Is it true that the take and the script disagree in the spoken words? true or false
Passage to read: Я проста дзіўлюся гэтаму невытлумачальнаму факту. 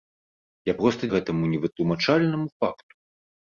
true